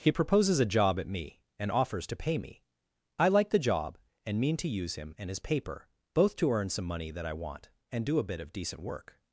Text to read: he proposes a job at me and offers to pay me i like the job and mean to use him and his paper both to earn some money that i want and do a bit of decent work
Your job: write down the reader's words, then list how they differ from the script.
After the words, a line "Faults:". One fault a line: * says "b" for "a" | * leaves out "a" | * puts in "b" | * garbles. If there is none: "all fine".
he proposes a job at me and offers to pay me i like the job and mean to use him and his paper both to earn some money that i want and do a bit of decent work
Faults:
all fine